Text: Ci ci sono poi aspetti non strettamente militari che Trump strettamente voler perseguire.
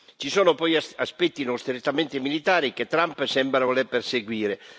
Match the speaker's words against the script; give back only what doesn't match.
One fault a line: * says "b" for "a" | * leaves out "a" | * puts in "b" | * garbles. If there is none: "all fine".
* leaves out "ci"
* says "sembra" for "strettamente"